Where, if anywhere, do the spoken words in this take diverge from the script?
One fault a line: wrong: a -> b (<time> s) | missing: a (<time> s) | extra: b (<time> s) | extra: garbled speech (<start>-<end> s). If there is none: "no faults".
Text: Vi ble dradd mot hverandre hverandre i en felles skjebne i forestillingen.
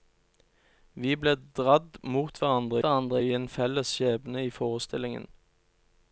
no faults